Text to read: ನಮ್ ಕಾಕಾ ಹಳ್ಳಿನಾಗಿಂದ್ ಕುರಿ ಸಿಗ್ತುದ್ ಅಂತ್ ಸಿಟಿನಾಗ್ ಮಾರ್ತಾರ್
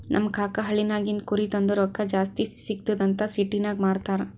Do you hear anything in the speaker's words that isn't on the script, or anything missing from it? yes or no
yes